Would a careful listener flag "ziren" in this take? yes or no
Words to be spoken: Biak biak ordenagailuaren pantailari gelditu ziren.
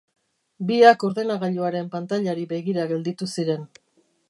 no